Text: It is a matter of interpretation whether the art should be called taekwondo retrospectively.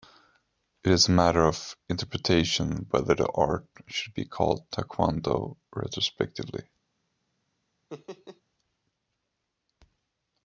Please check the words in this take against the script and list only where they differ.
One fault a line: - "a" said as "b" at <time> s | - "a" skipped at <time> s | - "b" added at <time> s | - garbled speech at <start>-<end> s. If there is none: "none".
none